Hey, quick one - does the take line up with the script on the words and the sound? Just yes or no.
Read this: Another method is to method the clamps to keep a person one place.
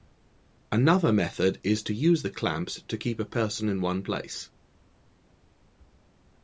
no